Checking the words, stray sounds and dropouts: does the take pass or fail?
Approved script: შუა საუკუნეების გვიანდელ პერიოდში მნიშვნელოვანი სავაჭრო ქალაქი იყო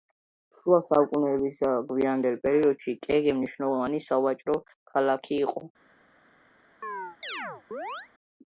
fail